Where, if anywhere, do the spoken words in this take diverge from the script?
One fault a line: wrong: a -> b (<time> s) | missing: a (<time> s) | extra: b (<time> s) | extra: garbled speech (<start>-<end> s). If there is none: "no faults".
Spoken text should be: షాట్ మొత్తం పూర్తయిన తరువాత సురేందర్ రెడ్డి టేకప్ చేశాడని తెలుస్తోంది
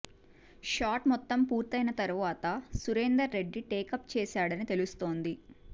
no faults